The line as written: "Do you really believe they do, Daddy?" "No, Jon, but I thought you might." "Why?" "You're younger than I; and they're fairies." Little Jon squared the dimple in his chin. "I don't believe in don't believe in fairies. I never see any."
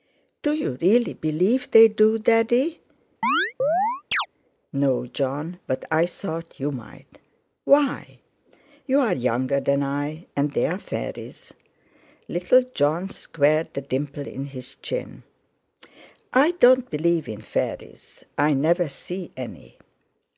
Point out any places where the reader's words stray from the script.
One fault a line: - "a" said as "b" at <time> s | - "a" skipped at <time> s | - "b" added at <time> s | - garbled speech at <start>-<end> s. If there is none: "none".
- "don't believe in" skipped at 17.4 s